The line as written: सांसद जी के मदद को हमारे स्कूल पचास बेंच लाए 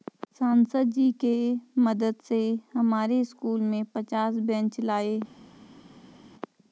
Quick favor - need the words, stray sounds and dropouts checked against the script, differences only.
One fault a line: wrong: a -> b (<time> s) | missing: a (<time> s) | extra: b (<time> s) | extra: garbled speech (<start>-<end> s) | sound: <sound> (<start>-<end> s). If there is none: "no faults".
wrong: को -> से (2.2 s)
extra: में (3.6 s)